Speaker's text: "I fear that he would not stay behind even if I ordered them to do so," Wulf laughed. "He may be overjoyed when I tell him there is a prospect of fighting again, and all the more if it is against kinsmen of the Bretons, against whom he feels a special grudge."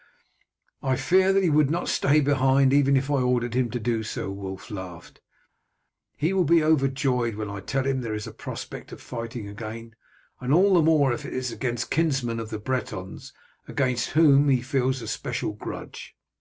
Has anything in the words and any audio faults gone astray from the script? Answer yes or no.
yes